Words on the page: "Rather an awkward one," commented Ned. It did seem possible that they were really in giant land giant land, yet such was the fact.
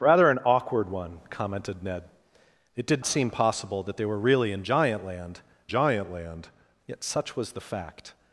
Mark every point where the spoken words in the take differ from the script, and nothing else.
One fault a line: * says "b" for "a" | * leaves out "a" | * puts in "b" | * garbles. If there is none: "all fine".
all fine